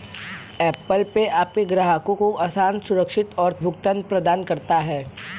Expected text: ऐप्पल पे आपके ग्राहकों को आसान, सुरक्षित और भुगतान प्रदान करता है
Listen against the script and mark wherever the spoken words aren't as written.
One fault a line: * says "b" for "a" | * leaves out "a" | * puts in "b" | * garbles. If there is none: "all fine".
all fine